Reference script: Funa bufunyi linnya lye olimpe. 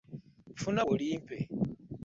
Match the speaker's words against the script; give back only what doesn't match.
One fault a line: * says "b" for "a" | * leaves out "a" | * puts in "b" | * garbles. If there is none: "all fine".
* leaves out "bufunyi linnya lye"